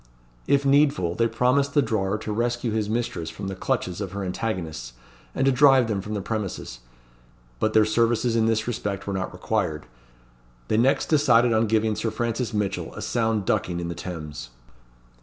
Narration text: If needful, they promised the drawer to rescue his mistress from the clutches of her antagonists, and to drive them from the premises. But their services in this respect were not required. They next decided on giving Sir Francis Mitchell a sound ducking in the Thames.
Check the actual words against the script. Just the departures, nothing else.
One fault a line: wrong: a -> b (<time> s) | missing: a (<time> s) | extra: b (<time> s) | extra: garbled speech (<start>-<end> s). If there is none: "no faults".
no faults